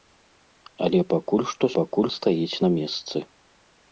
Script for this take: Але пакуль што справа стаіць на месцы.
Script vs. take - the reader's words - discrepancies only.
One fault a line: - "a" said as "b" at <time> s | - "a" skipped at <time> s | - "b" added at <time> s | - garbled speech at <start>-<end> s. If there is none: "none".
- "справа" said as "пакуль" at 1.8 s